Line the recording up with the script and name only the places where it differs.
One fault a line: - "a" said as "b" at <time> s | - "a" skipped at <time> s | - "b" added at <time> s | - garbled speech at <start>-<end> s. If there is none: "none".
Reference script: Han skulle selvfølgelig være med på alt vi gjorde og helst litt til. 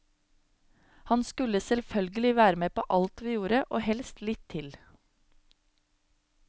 none